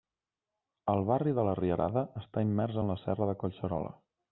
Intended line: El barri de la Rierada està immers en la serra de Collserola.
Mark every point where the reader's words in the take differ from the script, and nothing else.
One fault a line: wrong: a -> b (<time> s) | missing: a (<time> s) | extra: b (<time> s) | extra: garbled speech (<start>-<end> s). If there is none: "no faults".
no faults